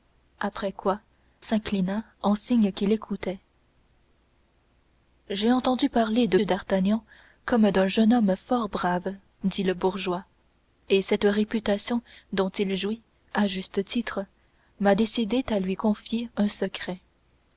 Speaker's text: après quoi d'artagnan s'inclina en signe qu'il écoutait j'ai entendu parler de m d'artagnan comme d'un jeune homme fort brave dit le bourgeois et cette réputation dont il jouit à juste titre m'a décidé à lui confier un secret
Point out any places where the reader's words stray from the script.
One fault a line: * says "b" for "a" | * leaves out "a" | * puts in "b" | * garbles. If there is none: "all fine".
* leaves out "d'artagnan"
* leaves out "m"